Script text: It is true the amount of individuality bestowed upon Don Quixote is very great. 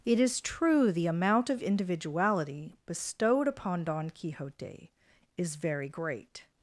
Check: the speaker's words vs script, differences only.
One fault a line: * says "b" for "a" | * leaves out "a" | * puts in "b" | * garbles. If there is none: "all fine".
all fine